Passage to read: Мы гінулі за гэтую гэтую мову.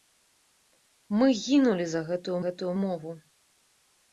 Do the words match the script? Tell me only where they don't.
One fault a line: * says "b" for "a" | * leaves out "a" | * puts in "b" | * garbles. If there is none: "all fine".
all fine